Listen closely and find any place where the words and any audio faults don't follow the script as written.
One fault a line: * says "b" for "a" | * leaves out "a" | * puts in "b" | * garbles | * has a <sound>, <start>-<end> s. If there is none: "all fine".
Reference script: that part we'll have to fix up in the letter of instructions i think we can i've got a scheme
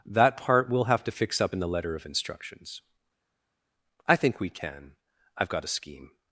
all fine